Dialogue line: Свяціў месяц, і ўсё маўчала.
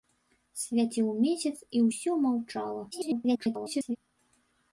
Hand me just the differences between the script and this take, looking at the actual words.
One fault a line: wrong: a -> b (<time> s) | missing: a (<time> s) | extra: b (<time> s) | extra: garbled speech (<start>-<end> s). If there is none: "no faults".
extra: garbled speech (2.9-4.0 s)